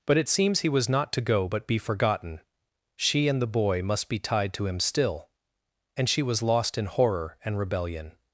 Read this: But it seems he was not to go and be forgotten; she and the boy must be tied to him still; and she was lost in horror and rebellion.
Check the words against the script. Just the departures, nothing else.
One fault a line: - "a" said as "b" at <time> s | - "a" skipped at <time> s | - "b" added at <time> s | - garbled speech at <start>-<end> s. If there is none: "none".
- "and" said as "but" at 1.5 s